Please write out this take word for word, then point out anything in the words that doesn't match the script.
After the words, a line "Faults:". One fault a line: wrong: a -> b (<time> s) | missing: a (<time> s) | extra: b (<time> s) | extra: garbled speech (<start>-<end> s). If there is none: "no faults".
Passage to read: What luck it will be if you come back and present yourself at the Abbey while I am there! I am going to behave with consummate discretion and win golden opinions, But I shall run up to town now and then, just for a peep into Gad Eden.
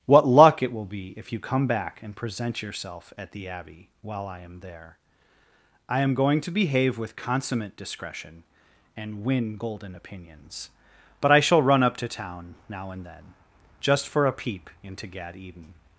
What luck it will be if you come back and present yourself at the Abbey while I am there! I am going to behave with consummate discretion and win golden opinions, But I shall run up to town now and then, just for a peep into Gad Eden.
Faults:
no faults